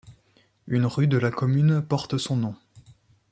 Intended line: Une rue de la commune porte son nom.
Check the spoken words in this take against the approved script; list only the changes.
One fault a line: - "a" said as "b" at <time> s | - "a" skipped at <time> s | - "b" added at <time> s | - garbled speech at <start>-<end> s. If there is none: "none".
none